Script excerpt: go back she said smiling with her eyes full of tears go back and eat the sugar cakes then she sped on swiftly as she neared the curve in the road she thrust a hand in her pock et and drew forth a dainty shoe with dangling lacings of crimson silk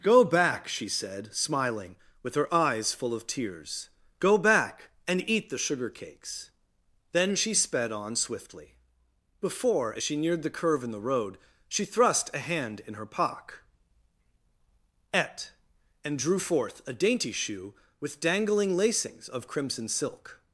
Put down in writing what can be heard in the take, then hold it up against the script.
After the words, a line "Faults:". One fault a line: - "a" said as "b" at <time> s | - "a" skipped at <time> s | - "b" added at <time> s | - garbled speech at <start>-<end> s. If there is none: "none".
go back she said smiling with her eyes full of tears go back and eat the sugar cakes then she sped on swiftly before as she neared the curve in the road she thrust a hand in her pock et and drew forth a dainty shoe with dangling lacings of crimson silk
Faults:
- "before" added at 9.4 s